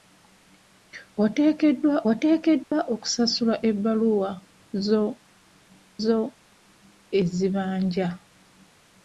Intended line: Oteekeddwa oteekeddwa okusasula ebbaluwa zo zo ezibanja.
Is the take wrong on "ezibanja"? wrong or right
right